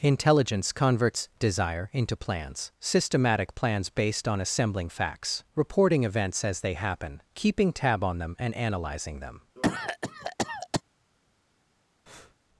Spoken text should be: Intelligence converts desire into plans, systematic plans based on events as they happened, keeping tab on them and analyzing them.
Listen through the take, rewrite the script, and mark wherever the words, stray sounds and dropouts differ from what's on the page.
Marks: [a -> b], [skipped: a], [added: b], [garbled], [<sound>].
Intelligence converts desire into plans, systematic plans based on [added: assembling facts reporting] events as they [happened, -> happen] keeping tab on them and analyzing them. [cough] [breath]